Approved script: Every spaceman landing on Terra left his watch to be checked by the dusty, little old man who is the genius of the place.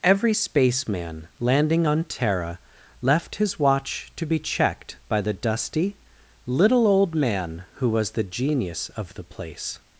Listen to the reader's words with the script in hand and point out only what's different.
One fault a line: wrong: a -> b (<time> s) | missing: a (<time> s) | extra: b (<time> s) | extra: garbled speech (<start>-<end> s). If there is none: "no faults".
wrong: is -> was (7.9 s)